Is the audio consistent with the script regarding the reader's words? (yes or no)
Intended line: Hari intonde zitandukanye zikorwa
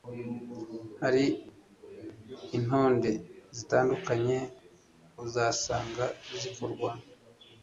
no